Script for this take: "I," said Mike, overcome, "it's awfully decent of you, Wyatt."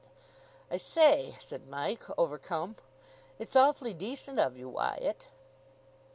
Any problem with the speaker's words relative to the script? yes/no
yes